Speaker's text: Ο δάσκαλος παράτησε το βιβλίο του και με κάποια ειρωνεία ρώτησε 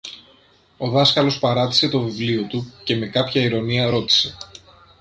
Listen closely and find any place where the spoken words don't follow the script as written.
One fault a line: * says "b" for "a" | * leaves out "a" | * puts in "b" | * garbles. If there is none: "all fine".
all fine